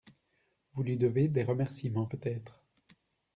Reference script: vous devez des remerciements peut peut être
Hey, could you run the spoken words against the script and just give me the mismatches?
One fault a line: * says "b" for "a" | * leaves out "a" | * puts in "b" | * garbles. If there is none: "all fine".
* puts in "lui"
* leaves out "peut"